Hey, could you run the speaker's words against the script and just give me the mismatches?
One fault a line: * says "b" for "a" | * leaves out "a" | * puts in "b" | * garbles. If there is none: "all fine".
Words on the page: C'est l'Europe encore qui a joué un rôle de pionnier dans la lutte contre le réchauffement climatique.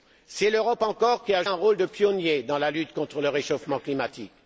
* leaves out "joué"